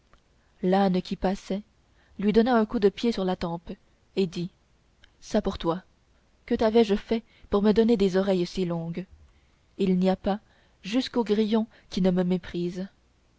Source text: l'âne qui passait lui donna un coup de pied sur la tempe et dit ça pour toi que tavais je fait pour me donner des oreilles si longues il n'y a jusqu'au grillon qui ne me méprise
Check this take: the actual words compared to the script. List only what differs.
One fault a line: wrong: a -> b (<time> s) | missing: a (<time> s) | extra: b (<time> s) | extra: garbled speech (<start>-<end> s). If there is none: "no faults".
extra: pas (10.2 s)